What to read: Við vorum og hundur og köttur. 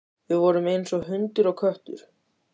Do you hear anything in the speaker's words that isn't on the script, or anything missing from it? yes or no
yes